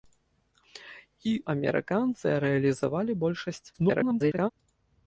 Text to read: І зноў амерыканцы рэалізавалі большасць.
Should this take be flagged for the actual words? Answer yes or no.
yes